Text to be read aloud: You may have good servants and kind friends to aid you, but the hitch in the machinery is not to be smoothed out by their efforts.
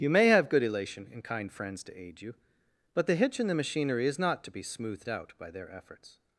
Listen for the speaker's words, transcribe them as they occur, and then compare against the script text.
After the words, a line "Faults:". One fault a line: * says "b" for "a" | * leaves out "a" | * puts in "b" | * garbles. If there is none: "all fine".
You may have good elation and kind friends to aid you, but the hitch in the machinery is not to be smoothed out by their efforts.
Faults:
* says "elation" for "servants"